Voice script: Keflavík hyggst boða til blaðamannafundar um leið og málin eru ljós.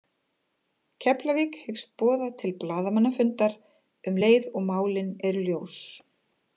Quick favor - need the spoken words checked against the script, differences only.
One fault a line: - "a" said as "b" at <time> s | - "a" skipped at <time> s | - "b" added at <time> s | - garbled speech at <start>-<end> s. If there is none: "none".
none